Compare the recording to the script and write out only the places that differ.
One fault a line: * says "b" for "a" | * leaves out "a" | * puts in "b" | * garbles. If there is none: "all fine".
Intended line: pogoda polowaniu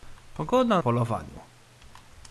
all fine